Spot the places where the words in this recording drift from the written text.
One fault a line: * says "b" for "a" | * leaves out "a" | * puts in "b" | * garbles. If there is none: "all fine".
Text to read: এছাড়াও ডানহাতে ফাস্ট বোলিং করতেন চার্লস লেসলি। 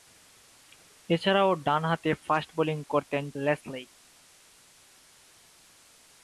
* leaves out "চার্লস"